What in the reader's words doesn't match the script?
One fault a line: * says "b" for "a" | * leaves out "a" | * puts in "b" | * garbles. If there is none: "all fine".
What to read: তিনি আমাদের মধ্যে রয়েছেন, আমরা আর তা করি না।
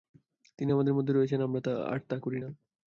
all fine